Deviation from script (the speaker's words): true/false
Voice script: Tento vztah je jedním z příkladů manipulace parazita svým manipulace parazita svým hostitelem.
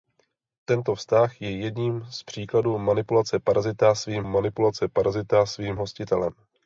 false